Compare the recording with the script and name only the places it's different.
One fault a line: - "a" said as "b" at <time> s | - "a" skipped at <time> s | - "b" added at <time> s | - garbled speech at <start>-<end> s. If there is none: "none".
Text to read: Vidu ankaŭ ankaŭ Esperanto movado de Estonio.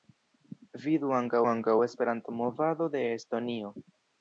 none